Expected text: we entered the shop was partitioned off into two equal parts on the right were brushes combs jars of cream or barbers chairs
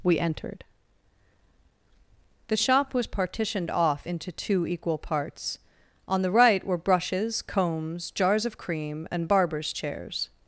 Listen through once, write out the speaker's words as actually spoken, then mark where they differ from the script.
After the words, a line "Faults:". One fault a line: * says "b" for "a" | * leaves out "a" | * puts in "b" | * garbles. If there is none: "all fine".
we entered the shop was partitioned off into two equal parts on the right were brushes combs jars of cream and barbers chairs
Faults:
* says "and" for "or"